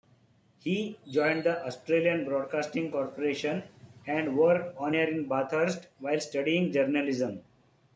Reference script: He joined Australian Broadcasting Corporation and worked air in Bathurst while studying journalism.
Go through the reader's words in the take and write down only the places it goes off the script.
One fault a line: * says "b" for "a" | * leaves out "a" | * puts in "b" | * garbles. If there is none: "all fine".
* puts in "the"
* puts in "on"